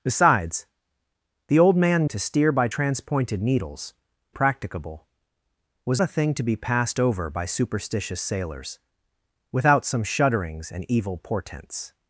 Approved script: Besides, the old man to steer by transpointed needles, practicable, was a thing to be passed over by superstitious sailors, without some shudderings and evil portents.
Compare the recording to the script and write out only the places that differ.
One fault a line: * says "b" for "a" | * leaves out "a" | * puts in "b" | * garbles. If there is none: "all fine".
all fine